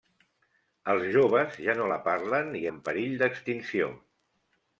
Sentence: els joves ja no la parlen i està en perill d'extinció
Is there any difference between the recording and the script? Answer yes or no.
yes